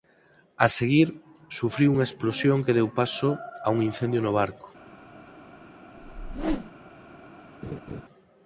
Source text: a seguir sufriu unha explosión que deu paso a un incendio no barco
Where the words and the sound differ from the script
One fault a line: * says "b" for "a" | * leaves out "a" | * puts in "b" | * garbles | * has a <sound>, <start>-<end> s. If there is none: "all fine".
* has a whoosh, 6.0-6.7 s
* has a laugh, 7.6-8.0 s